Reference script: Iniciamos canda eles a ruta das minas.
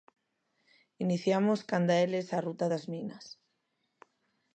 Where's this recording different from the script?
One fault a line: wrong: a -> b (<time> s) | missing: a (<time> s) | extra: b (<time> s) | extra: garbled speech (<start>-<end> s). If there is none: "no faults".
no faults